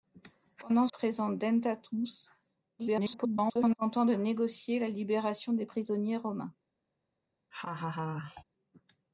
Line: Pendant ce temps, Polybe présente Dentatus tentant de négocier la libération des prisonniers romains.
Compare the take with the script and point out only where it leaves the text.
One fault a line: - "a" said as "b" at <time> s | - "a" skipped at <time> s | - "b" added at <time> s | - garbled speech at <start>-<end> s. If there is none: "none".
- "ce temps Polybe" skipped at 0.9 s
- garbled speech at 2.8-3.8 s